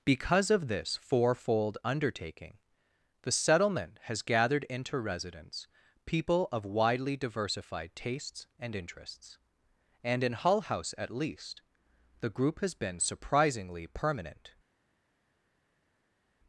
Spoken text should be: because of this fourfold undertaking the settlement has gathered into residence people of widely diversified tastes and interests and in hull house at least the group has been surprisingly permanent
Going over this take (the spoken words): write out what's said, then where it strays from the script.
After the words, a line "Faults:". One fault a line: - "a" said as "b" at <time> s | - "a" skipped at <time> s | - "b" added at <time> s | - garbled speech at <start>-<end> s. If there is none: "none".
because of this fourfold undertaking the settlement has gathered into residence people of widely diversified tastes and interests and in hull house at least the group has been surprisingly permanent
Faults:
none